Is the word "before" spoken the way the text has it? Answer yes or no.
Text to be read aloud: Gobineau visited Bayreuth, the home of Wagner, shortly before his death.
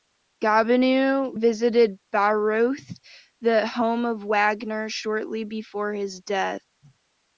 yes